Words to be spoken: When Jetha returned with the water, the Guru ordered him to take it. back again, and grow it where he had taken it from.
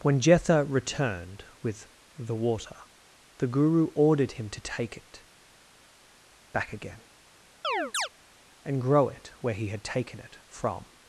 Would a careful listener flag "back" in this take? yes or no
no